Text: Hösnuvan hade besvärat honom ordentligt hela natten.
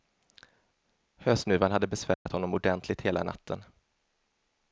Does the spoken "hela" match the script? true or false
true